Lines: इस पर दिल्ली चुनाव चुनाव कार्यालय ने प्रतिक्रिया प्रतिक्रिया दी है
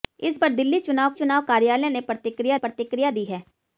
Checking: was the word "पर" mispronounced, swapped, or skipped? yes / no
no